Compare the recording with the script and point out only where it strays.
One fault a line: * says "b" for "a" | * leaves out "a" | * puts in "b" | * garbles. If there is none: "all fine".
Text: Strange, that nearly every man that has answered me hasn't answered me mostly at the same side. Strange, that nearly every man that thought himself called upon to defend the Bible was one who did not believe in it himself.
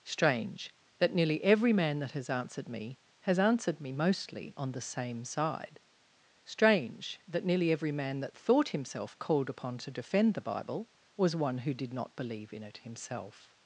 * says "has" for "hasn't"
* says "on" for "at"